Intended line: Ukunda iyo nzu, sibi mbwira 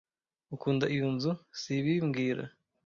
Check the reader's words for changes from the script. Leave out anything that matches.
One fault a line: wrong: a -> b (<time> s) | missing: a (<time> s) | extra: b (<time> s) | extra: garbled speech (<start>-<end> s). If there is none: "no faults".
no faults